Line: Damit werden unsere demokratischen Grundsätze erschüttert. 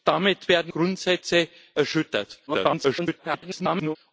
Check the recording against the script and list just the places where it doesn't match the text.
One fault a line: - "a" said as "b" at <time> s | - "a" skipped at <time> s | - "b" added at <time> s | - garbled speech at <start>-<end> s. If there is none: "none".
- "unsere demokratischen" skipped at 0.7 s
- garbled speech at 2.5-4.0 s